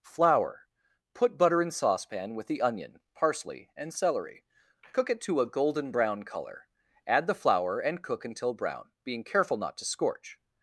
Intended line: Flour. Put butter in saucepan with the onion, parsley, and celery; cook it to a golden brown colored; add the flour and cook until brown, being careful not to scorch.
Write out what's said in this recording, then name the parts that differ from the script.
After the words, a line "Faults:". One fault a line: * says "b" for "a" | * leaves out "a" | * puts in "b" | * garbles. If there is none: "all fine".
Flour. Put butter in saucepan with the onion, parsley, and celery; cook it to a golden brown color; add the flour and cook until brown, being careful not to scorch.
Faults:
* says "color" for "colored"